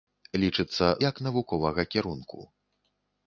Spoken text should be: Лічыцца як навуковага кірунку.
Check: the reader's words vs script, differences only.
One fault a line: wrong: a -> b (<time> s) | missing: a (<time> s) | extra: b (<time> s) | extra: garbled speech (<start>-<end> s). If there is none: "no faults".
no faults